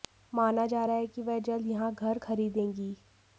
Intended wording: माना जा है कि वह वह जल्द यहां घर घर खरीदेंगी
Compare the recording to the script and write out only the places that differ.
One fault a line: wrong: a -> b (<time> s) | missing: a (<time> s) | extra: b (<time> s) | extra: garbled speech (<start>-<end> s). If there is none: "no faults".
extra: रहा (0.8 s)
missing: वह (1.4 s)
missing: घर (2.2 s)